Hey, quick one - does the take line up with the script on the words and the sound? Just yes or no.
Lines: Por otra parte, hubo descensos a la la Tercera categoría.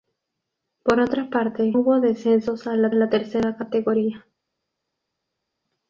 yes